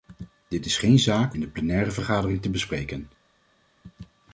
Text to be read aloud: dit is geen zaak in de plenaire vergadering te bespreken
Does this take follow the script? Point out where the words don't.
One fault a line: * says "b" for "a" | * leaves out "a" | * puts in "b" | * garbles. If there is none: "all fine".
all fine